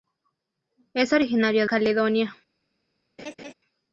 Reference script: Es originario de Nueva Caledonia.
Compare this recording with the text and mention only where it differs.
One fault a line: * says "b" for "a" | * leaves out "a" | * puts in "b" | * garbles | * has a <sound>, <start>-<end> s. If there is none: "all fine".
* leaves out "de Nueva"
* has a laugh, 3.2-3.5 s